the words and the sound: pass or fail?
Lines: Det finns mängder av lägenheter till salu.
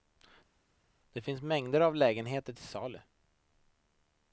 pass